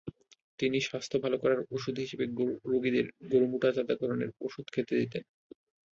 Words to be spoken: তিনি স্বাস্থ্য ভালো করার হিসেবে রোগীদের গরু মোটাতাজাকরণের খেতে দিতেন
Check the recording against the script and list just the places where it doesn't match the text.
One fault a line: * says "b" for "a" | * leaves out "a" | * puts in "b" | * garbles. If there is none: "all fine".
* puts in "ওষুধ"
* puts in "ওষুধ"